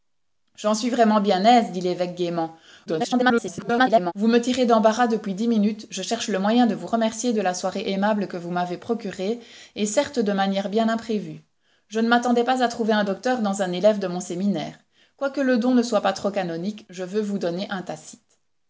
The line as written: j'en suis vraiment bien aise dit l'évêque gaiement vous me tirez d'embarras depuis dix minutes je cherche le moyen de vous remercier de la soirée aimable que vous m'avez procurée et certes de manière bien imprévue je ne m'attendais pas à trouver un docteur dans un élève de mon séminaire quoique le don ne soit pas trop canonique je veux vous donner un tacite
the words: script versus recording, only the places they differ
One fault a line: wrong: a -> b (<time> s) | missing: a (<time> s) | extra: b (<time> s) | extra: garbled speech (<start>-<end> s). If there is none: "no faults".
extra: garbled speech (2.9-4.1 s)